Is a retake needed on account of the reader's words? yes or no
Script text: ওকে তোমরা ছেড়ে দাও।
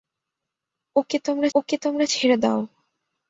yes